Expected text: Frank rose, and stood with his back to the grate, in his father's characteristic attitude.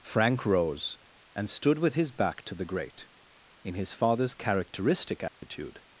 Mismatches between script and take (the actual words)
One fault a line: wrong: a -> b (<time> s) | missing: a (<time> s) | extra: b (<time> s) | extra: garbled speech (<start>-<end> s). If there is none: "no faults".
no faults